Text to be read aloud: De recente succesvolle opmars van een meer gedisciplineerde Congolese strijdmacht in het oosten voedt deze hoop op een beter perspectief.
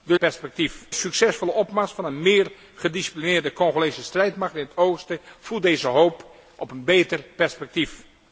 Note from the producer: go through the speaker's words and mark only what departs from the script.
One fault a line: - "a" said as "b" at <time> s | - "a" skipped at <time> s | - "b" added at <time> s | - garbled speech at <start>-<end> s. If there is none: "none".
- "recente" said as "perspectief" at 0.2 s